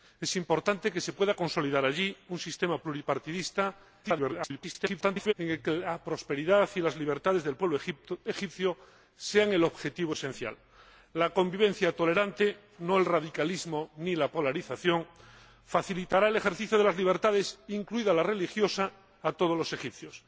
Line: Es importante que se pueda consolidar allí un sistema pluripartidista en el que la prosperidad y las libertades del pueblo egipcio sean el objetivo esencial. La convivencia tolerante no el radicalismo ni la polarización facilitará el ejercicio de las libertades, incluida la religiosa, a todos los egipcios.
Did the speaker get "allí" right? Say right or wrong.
right